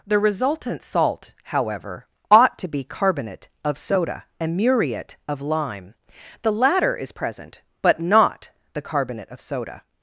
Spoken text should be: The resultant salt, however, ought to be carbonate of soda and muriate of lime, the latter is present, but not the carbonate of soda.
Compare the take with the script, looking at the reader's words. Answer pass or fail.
pass